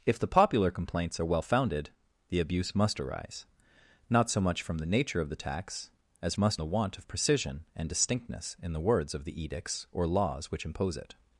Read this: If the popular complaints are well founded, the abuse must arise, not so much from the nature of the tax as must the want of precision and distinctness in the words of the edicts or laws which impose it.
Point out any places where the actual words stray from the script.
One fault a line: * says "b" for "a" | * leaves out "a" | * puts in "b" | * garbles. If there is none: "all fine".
all fine